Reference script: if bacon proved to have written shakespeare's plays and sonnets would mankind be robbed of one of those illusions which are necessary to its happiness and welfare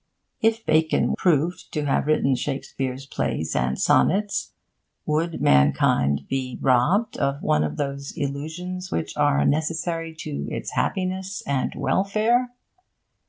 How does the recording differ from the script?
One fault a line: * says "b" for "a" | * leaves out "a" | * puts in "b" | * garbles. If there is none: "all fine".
all fine